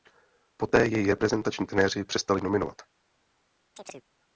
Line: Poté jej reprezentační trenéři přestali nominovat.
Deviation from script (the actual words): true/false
false